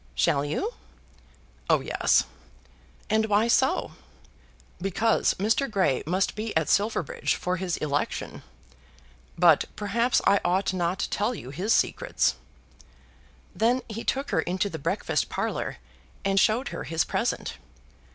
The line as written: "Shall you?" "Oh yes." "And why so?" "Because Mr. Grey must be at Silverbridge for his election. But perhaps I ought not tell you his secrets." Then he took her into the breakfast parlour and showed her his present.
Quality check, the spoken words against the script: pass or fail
pass